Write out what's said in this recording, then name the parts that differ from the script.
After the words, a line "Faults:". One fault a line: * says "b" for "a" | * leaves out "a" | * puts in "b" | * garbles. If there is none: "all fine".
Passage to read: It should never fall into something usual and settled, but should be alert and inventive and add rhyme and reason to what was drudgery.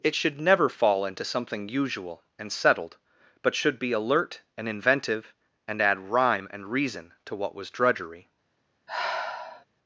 It should never fall into something usual and settled, but should be alert and inventive and add rhyme and reason to what was drudgery.
Faults:
all fine